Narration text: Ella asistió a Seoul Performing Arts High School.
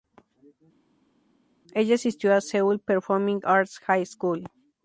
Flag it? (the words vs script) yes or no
no